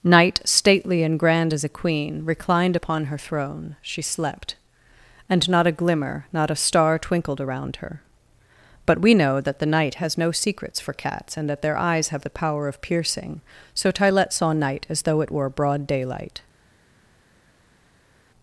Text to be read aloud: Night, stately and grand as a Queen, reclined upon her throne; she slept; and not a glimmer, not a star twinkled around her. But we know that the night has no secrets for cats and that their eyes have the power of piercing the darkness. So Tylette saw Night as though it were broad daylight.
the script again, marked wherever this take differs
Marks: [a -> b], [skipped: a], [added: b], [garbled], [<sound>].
Night, stately and grand as a Queen, reclined upon her throne; she slept; and not a glimmer, not a star twinkled around her. But we know that the night has no secrets for cats and that their eyes have the power of piercing [skipped: the darkness.] So Tylette saw Night as though it were broad daylight.